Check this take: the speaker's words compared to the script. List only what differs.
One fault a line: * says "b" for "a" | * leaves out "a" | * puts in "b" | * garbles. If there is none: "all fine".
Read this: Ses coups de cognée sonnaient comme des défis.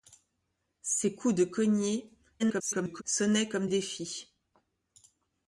* garbles
* leaves out "des"